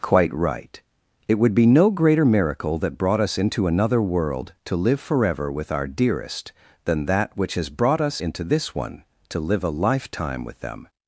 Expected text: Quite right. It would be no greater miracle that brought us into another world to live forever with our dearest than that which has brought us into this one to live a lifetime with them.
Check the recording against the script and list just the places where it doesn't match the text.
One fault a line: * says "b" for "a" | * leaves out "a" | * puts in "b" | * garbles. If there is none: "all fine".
all fine